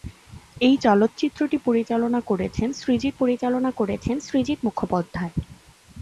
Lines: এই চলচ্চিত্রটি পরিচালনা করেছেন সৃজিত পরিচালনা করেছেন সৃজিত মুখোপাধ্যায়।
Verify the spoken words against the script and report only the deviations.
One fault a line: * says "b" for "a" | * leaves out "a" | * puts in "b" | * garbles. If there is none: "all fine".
all fine